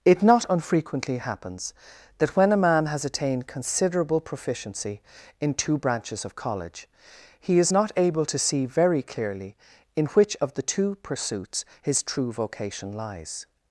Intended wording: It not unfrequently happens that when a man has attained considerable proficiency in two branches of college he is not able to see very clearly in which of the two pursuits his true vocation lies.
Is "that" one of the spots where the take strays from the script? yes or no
no